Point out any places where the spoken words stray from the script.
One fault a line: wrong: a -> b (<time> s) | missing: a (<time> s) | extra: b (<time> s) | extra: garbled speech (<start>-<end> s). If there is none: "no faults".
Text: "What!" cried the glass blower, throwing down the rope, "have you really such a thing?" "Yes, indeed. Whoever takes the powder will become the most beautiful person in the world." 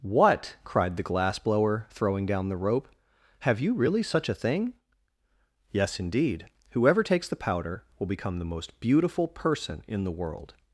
no faults